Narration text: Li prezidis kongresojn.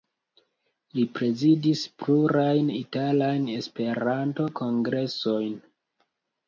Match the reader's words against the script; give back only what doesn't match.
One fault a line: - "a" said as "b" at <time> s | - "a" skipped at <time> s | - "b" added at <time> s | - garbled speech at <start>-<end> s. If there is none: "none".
- "plurajn italajn Esperanto" added at 2.0 s